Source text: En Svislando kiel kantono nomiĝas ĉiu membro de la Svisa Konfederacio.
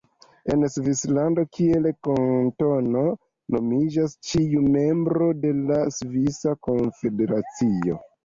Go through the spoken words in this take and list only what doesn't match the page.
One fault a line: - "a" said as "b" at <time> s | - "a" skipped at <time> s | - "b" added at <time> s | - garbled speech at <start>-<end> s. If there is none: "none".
none